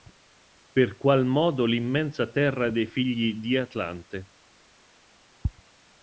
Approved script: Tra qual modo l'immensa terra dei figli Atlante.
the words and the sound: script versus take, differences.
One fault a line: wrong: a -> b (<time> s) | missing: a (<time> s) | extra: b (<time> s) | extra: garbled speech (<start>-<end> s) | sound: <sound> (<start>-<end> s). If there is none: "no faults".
wrong: Tra -> Per (0.7 s)
extra: di (3.3 s)